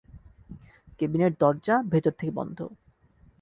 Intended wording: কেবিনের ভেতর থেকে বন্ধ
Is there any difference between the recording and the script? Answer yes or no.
yes